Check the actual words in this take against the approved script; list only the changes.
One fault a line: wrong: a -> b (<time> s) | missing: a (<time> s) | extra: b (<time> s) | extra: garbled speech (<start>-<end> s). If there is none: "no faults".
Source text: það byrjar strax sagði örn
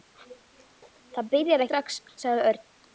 no faults